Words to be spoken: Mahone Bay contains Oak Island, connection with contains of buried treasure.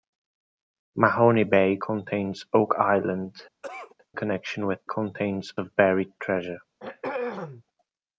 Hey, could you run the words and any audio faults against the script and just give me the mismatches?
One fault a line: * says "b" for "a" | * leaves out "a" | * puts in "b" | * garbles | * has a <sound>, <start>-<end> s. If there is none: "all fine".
* has a cough, 3.6-4.0 s
* has a throat clearing, 6.8-7.6 s